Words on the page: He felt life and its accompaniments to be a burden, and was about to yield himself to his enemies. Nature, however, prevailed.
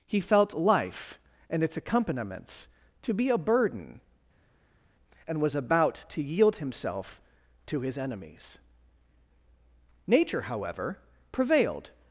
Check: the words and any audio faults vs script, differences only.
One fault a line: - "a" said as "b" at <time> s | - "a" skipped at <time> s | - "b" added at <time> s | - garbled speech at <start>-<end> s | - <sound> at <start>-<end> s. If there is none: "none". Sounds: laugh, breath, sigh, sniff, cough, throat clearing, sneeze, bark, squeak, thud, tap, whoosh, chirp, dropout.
none